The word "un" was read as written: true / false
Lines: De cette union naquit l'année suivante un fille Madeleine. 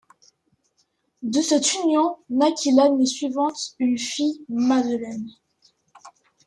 false